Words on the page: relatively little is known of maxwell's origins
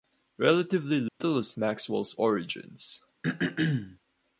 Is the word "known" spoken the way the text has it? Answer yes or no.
no